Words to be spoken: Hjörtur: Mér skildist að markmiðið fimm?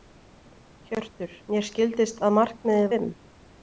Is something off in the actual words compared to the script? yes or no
no